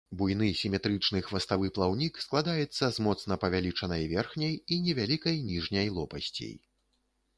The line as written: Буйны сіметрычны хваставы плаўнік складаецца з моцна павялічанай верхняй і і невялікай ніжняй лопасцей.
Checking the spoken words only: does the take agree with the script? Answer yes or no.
no